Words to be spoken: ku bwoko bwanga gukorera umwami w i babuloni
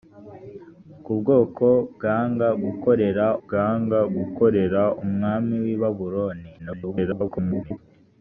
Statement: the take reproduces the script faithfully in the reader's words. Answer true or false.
false